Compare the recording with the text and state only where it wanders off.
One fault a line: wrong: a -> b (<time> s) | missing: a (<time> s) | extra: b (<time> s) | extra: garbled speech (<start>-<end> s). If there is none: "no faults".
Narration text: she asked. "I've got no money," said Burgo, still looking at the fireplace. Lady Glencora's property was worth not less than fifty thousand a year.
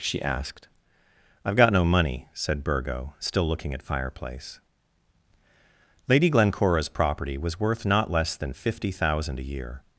missing: the (3.8 s)